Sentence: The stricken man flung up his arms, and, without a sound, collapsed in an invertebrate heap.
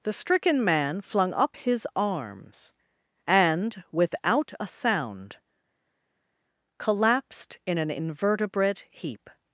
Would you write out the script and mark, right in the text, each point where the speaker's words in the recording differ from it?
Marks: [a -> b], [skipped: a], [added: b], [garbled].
The stricken man flung up his arms, and, without a sound, collapsed in an invertebrate heap.